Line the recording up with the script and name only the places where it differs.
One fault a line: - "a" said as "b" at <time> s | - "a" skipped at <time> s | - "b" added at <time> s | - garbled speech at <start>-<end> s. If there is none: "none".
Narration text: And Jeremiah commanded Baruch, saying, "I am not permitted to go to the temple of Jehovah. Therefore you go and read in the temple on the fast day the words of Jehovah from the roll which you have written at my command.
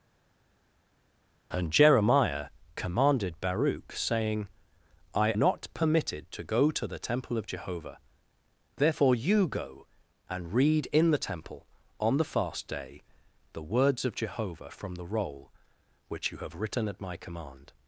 - "am" skipped at 5.3 s